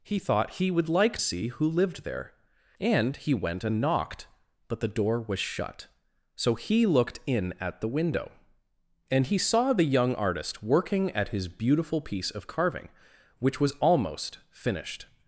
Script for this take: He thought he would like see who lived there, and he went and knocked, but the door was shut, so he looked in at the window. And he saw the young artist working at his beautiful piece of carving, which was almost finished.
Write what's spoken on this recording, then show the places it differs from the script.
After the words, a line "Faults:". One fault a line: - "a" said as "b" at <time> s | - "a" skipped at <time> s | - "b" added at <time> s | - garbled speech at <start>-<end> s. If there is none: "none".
He thought he would like see who lived there, and he went and knocked, but the door was shut, so he looked in at the window. And he saw the young artist working at his beautiful piece of carving, which was almost finished.
Faults:
none